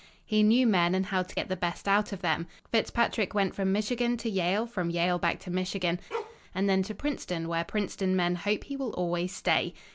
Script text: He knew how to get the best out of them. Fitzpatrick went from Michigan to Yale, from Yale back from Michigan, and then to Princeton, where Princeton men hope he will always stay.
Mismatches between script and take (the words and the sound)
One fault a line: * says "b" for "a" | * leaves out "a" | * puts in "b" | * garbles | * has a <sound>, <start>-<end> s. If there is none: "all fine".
* puts in "men and"
* says "to" for "from"
* has a bark, 6.1-6.4 s